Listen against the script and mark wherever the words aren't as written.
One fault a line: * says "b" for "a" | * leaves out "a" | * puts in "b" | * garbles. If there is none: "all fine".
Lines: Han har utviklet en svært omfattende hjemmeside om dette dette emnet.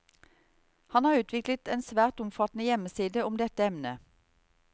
* leaves out "dette"